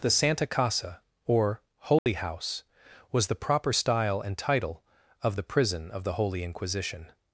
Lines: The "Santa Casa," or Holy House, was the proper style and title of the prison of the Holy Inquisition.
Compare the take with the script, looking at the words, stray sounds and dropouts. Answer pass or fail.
fail